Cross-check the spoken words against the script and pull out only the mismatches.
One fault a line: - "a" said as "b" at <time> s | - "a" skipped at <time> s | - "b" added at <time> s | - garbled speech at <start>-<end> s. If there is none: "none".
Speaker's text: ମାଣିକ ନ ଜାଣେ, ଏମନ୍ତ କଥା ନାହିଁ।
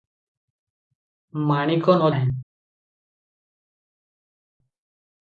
- "ଜାଣେ ଏମନ୍ତ କଥା" skipped at 2.1 s